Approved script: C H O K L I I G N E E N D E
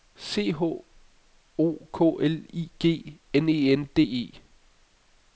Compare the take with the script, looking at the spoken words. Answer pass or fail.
fail